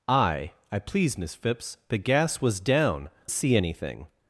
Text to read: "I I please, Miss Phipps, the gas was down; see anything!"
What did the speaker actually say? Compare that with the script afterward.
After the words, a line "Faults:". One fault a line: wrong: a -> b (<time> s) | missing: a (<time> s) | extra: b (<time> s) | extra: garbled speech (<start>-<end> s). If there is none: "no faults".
"I I please, Miss Phipps, the gas was down; see anything!"
Faults:
no faults